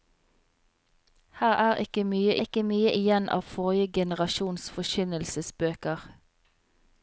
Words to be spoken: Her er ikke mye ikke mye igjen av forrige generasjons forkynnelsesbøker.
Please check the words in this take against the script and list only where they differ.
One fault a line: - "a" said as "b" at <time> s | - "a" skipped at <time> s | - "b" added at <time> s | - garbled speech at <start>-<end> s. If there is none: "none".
none